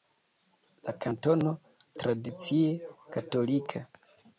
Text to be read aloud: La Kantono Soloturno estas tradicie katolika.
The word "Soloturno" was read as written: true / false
false